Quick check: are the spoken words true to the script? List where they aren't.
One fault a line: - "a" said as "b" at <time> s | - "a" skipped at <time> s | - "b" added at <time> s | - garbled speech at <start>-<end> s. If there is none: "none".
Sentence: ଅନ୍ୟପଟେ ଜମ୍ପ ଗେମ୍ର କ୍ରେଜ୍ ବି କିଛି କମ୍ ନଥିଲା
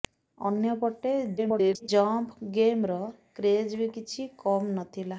- garbled speech at 1.4-1.9 s